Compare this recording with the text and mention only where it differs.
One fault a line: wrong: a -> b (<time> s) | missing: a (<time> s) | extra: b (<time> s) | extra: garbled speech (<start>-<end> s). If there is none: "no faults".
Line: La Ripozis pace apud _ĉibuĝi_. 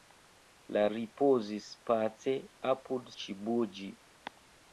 no faults